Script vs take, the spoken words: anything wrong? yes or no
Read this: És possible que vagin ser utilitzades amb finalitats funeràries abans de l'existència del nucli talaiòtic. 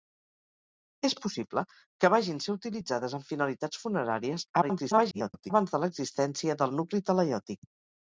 yes